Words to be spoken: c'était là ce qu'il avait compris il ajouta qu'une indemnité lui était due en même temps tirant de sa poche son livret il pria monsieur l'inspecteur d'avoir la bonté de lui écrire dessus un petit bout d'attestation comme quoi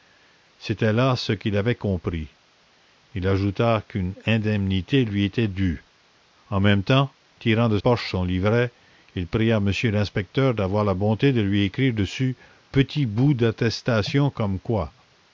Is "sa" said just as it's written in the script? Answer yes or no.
no